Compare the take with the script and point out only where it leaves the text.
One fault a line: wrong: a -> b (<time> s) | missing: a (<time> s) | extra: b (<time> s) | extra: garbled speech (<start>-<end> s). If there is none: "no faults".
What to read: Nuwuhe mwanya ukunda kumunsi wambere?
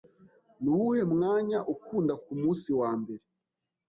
no faults